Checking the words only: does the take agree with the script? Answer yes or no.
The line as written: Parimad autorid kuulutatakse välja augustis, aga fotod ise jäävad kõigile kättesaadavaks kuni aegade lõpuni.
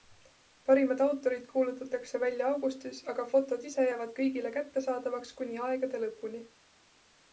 yes